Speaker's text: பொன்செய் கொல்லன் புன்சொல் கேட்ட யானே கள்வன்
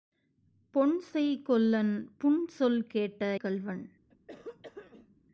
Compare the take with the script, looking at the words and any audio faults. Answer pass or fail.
fail